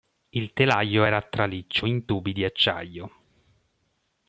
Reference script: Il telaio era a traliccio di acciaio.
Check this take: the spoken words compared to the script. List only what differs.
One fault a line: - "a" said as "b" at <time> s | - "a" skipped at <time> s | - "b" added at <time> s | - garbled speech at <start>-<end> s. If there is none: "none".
- "in tubi" added at 1.8 s